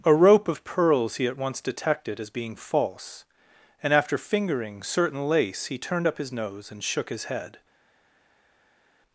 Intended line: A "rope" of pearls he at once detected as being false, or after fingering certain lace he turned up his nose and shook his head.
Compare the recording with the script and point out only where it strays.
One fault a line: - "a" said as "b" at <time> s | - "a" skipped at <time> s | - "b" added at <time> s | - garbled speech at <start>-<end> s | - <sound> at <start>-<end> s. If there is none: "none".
- "or" said as "and" at 3.8 s